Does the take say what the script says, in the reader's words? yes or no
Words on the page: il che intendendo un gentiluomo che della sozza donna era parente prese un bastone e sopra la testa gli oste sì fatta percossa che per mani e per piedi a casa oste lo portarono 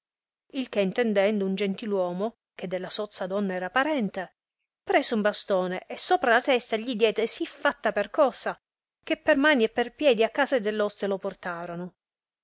no